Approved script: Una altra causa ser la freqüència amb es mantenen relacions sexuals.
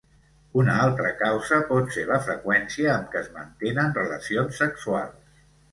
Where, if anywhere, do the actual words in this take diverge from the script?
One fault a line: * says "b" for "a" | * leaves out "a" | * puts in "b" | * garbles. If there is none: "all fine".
* puts in "pot"
* puts in "què"